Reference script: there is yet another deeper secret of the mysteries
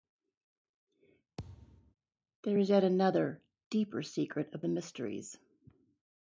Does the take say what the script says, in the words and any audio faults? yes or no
no